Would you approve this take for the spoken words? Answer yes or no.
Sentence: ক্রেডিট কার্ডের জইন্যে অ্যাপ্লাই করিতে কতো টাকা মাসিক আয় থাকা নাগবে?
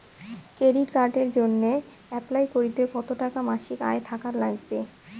yes